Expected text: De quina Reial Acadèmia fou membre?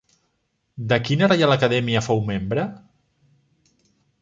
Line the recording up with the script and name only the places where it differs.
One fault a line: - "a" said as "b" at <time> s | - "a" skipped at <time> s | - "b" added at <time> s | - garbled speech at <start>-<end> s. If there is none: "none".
none